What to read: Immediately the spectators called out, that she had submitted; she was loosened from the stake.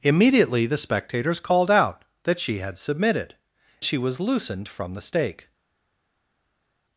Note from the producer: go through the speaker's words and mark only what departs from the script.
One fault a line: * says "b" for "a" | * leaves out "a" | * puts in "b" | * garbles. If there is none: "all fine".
all fine